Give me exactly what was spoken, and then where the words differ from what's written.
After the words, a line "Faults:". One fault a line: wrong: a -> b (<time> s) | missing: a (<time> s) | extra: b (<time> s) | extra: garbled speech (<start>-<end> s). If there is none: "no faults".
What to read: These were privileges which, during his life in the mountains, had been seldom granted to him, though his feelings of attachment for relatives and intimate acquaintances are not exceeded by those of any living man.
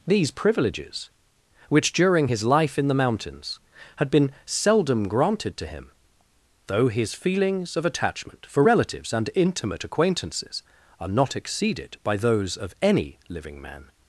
These privileges which, during his life in the mountains, had been seldom granted to him, though his feelings of attachment for relatives and intimate acquaintances are not exceeded by those of any living man.
Faults:
missing: were (0.3 s)